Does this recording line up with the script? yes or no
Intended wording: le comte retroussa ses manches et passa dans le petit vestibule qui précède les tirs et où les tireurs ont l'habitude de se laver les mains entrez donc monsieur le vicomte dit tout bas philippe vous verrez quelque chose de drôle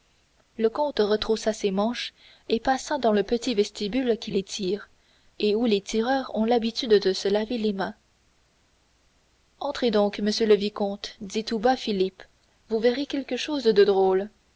no